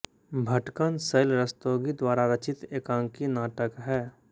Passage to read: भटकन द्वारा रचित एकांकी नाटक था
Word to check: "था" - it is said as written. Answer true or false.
false